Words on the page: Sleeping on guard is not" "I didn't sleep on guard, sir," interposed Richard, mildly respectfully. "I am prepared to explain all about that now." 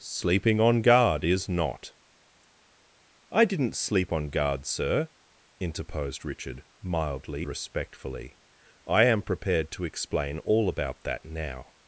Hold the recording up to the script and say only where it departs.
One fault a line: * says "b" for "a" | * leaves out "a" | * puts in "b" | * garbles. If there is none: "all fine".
all fine